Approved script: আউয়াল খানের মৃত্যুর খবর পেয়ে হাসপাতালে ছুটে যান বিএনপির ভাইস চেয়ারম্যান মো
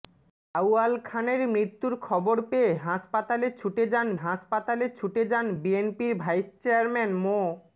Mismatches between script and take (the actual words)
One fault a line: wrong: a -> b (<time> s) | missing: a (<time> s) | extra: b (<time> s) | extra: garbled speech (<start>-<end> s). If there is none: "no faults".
extra: হাসপাতালে ছুটে যান (4.2 s)